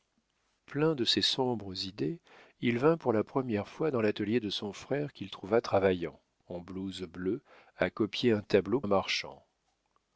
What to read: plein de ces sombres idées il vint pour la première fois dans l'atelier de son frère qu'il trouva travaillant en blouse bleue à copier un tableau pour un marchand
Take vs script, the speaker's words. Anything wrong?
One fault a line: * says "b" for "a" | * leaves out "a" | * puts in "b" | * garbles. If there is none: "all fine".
* leaves out "pour"